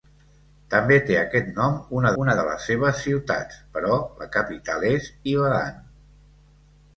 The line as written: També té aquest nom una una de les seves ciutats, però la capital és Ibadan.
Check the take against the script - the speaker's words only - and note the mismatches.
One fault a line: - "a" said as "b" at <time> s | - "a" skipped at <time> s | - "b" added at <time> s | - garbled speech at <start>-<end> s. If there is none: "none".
none